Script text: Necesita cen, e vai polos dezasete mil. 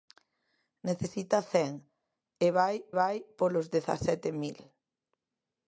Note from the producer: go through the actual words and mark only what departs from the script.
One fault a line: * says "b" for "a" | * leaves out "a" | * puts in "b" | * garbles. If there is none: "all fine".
* puts in "vai"